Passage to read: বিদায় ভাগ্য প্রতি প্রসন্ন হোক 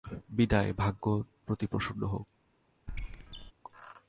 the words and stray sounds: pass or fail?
fail